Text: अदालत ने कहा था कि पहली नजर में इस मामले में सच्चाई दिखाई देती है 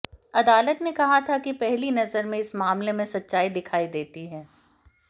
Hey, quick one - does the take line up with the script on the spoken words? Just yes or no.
yes